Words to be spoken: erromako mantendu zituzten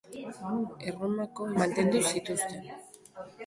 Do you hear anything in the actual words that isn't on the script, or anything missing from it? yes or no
no